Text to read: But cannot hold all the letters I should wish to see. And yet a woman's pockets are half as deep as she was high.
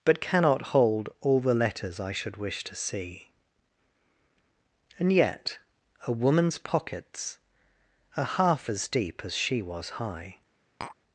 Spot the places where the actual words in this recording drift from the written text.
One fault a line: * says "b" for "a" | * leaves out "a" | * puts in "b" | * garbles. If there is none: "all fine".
all fine